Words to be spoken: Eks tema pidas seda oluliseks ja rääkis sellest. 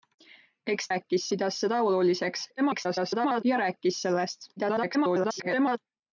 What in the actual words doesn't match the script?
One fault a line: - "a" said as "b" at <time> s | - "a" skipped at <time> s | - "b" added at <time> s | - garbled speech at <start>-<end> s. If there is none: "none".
- "tema" said as "rääkis" at 0.9 s
- garbled speech at 2.6-3.4 s
- garbled speech at 4.6-5.8 s